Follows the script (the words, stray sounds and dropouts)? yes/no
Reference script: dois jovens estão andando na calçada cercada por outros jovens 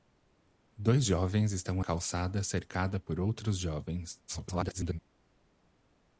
no